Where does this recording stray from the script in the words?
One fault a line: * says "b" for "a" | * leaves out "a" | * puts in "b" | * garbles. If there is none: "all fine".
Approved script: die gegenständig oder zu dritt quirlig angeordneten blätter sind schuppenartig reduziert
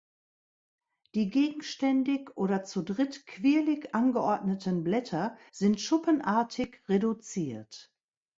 all fine